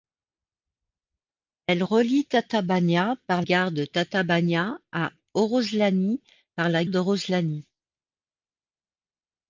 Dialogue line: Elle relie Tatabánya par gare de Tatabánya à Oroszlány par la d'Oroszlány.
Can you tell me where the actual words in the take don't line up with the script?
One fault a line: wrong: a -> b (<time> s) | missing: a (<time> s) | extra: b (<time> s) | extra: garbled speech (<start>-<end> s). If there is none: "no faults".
no faults